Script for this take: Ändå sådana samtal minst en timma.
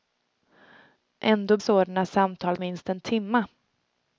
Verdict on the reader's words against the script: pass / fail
pass